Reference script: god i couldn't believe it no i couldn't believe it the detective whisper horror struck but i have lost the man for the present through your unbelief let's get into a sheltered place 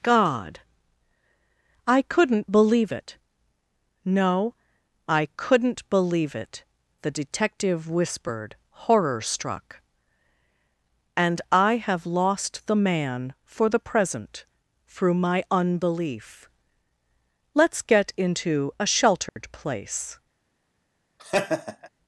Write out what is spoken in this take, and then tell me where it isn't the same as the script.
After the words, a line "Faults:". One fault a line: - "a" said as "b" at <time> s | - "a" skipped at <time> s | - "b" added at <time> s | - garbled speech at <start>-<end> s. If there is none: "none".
god i couldn't believe it no i couldn't believe it the detective whispered horror struck and i have lost the man for the present through my unbelief let's get into a sheltered place
Faults:
- "whisper" said as "whispered" at 7.9 s
- "but" said as "and" at 11.2 s
- "your" said as "my" at 15.2 s